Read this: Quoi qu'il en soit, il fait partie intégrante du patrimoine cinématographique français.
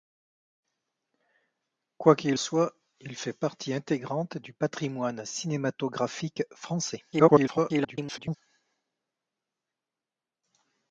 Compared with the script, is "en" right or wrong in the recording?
wrong